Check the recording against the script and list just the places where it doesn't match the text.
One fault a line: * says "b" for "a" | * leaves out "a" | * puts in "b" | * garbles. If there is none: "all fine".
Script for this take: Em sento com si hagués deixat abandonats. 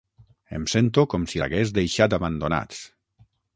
all fine